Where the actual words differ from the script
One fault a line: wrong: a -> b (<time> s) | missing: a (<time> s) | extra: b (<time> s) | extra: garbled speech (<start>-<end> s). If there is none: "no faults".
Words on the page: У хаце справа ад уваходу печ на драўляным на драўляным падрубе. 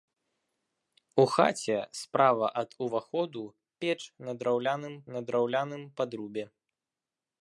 no faults